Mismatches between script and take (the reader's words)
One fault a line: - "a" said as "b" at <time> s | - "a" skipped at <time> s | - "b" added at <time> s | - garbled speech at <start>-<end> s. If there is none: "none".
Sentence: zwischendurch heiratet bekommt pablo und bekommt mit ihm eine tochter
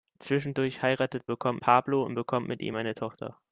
none